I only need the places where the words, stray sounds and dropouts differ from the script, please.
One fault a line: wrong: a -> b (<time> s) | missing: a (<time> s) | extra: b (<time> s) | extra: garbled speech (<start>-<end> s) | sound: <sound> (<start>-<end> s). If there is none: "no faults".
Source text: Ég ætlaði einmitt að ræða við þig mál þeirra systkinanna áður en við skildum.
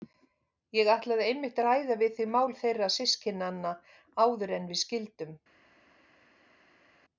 no faults